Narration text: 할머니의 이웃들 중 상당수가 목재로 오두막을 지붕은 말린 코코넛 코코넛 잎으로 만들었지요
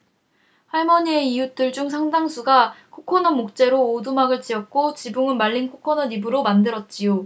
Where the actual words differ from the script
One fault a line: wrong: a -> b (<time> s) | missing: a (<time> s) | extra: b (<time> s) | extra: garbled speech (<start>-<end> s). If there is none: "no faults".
extra: 코코넛 (2.9 s)
extra: 지었고 (4.4 s)
missing: 코코넛 (6.1 s)